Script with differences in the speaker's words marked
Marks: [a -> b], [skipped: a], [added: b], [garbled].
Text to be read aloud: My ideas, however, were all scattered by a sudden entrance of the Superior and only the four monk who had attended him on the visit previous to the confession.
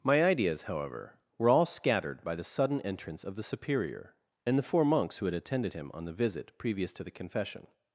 My ideas, however, were all scattered by [a -> the] sudden entrance of the Superior and [skipped: only] the four [monk -> monks] who had attended him on the visit previous to the confession.